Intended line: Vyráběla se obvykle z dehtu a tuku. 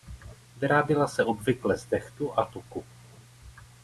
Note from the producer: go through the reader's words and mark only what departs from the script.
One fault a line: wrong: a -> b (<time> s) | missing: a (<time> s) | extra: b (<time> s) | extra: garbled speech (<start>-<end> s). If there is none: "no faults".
no faults